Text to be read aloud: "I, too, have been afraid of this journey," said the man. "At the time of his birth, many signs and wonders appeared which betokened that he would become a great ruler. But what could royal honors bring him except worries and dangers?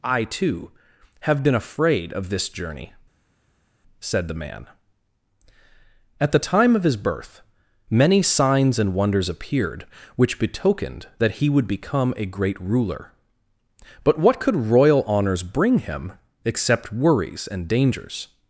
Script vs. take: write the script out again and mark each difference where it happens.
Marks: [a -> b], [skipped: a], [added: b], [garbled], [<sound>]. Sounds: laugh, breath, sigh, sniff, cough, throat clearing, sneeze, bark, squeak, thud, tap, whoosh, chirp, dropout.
"I, too, have been afraid of this journey," said the man. "At the time of his birth, many signs and wonders appeared which betokened that he would become a great ruler. But what could royal honors bring him except worries and dangers?